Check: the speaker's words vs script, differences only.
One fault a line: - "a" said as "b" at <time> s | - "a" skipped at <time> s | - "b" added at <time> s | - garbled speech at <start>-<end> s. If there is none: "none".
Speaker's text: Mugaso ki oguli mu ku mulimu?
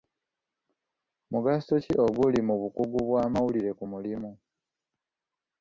- "bukugu bw'amawulire" added at 2.6 s